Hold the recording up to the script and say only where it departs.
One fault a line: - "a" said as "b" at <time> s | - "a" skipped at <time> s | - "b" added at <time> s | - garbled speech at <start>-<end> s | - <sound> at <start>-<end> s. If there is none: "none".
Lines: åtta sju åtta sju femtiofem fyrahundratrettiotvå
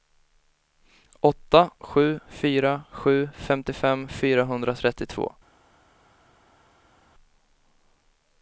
- "åtta" said as "fyra" at 2.3 s